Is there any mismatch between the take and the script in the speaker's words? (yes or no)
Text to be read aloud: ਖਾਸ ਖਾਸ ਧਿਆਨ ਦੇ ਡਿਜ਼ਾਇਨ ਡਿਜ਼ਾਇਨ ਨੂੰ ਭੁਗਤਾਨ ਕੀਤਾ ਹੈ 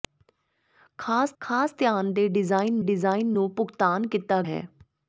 no